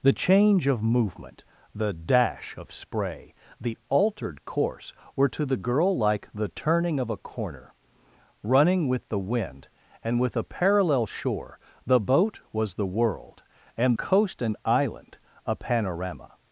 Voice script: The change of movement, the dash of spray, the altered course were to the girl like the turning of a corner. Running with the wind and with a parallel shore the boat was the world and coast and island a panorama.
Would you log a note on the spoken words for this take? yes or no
no